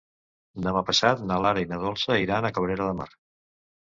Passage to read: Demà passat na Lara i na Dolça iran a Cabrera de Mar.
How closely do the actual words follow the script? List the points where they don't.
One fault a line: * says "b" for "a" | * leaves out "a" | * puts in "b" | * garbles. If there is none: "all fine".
all fine